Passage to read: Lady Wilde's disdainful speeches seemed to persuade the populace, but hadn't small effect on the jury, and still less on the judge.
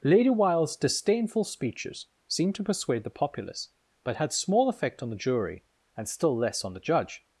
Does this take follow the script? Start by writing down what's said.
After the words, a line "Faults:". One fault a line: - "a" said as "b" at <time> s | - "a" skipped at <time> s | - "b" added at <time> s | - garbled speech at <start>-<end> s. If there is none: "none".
Lady Wilde's disdainful speeches seemed to persuade the populace, but had small effect on the jury, and still less on the judge.
Faults:
- "hadn't" said as "had" at 4.2 s